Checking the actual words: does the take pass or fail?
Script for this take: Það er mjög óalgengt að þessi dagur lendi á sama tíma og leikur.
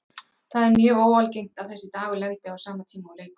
pass